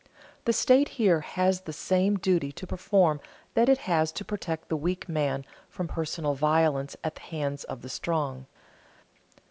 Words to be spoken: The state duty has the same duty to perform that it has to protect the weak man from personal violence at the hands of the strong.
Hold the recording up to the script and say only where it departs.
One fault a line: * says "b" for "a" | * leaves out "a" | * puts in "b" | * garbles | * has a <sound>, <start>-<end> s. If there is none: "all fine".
* says "here" for "duty"